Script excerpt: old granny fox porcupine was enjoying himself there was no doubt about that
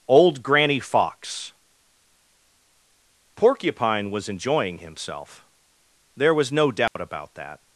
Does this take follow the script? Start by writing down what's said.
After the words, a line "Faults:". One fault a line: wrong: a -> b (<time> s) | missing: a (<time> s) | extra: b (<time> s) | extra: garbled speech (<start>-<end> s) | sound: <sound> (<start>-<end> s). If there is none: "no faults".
old granny fox porcupine was enjoying himself there was no doubt about that
Faults:
sound: dropout (6.9-7.0 s)